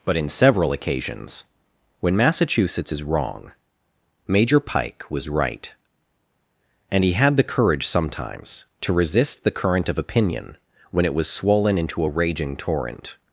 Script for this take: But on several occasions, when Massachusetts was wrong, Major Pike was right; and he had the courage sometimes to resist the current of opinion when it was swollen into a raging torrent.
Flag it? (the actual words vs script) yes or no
yes